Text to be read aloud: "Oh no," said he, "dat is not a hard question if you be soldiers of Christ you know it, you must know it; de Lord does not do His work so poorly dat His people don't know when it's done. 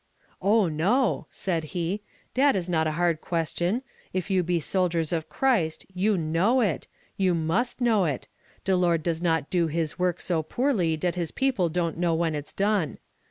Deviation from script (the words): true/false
false